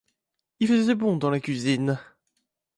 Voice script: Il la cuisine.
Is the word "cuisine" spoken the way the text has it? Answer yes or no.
yes